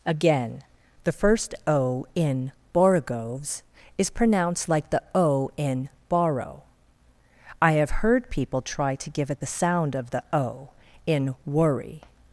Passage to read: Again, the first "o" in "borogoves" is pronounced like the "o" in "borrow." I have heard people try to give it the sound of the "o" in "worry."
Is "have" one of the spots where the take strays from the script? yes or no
no